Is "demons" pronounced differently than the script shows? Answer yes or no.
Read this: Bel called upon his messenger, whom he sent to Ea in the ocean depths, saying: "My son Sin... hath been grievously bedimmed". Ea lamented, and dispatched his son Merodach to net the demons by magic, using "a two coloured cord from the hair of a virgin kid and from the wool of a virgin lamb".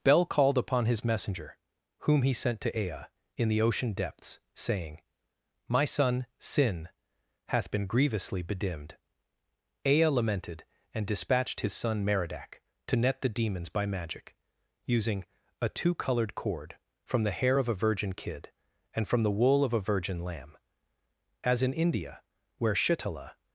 no